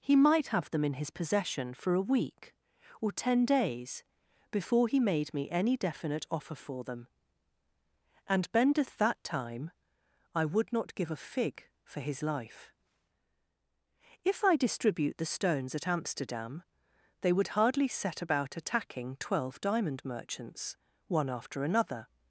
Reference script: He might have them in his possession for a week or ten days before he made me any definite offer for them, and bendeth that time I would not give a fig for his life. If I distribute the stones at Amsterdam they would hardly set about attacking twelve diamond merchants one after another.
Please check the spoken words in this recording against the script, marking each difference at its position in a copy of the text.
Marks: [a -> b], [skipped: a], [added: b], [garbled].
He might have them in his possession for a week or ten days before he made me any definite offer for them, and bendeth that time I would not give a fig for his life. If I distribute the stones at Amsterdam they would hardly set about attacking twelve diamond merchants one after another.